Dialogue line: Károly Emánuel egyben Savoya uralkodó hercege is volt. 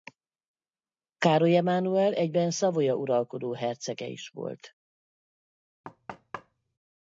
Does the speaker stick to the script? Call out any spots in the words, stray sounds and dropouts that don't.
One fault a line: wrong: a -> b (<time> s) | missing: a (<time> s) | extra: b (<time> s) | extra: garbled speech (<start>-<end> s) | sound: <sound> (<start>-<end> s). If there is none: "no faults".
sound: thud (5.8-6.8 s)